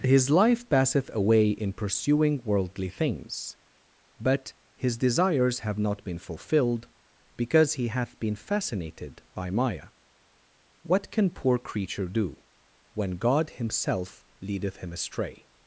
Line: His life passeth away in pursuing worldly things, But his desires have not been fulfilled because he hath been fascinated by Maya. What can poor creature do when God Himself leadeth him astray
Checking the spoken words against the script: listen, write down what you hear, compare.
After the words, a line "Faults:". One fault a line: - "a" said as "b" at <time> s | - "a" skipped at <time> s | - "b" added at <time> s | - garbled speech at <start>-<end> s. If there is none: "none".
His life passeth away in pursuing worldly things, But his desires have not been fulfilled because he hath been fascinated by Maya. What can poor creature do when God Himself leadeth him astray
Faults:
none